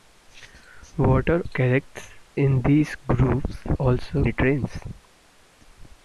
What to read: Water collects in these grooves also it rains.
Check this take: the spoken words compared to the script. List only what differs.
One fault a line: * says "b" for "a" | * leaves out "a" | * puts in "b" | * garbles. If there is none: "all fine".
all fine